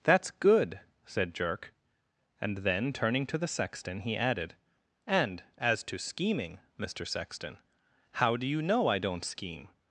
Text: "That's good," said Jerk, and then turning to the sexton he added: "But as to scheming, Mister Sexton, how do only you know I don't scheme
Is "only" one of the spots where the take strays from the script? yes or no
yes